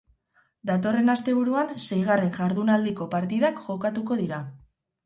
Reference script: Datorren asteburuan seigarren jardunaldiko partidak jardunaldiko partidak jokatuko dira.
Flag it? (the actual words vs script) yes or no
yes